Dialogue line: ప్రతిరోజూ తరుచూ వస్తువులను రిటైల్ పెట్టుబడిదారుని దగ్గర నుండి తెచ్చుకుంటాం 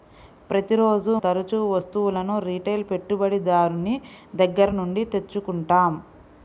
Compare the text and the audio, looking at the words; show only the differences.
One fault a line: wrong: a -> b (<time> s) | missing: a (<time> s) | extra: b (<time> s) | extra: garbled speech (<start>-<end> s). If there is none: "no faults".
no faults